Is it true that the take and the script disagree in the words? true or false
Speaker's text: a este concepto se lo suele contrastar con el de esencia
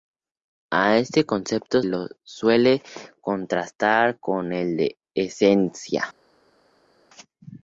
true